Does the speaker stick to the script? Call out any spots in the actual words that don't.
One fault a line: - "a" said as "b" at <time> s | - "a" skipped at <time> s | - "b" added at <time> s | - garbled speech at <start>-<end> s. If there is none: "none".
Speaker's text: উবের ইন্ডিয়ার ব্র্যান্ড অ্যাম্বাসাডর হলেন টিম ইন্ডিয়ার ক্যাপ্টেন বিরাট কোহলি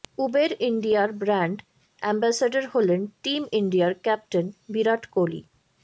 none